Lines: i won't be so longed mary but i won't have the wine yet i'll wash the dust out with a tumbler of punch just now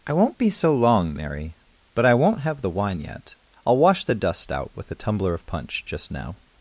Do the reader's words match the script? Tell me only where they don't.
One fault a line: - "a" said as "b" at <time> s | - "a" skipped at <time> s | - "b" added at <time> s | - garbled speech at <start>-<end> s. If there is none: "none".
- "longed" said as "long" at 0.7 s